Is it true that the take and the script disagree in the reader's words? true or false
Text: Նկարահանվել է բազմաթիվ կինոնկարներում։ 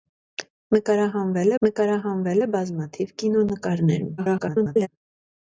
true